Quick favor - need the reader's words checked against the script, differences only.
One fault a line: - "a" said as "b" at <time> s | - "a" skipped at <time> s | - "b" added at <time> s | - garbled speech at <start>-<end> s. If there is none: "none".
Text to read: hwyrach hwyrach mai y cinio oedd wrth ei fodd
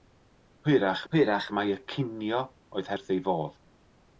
none